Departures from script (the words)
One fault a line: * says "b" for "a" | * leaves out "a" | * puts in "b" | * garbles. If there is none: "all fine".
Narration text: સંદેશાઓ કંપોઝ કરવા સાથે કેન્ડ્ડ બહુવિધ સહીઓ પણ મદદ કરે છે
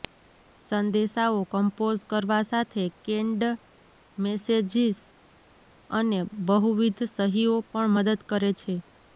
* puts in "મેસેજીસ અને"